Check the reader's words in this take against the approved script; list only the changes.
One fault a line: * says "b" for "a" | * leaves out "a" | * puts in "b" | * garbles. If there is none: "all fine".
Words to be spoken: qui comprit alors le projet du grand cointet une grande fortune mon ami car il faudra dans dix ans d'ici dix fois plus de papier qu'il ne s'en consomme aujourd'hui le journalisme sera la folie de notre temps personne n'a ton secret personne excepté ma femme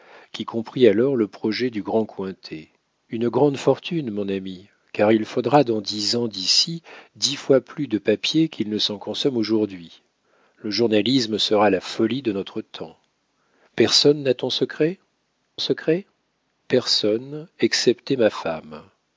* puts in "secret"